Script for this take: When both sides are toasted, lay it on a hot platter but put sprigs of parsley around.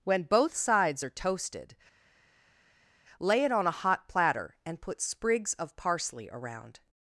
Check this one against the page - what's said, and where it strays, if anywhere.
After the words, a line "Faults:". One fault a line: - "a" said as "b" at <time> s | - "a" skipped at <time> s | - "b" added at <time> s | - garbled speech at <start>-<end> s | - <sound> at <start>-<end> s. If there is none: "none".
When both sides are toasted, lay it on a hot platter and put sprigs of parsley around.
Faults:
- "but" said as "and" at 4.7 s